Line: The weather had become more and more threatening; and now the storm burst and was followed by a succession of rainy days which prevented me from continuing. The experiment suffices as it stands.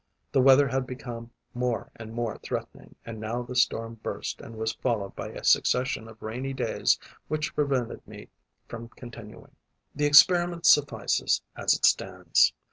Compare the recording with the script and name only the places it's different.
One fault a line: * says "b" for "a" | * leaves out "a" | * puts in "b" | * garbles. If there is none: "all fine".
all fine